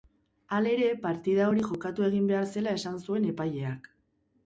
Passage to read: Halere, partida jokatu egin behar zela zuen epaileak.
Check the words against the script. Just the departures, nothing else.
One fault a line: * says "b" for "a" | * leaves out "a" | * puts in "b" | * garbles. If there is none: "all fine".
* puts in "hori"
* puts in "esan"